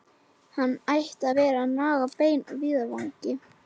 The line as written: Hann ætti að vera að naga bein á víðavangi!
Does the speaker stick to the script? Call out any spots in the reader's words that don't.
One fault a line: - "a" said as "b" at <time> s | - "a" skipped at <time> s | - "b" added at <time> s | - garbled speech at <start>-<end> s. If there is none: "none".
none